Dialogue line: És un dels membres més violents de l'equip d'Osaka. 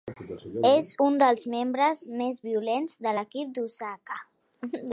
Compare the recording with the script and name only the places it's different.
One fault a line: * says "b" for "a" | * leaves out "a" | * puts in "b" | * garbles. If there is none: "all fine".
all fine